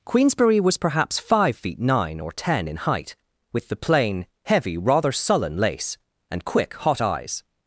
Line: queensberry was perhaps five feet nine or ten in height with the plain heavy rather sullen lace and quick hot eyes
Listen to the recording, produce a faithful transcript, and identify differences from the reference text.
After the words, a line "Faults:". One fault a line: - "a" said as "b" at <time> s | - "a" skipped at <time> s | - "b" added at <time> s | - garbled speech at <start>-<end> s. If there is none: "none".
queensberry was perhaps five feet nine or ten in height with the plain heavy rather sullen lace and quick hot eyes
Faults:
none